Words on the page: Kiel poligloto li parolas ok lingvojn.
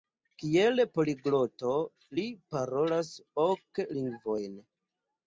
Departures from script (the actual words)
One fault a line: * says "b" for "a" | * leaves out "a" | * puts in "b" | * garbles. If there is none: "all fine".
all fine